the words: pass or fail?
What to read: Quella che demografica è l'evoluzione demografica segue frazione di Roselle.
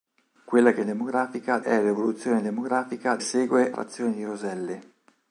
pass